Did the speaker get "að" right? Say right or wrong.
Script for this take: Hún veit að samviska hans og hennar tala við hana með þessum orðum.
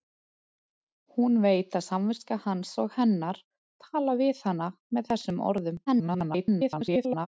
right